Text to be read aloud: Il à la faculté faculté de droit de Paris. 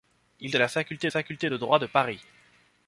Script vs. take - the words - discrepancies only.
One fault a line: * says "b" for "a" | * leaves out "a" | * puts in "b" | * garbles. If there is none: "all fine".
all fine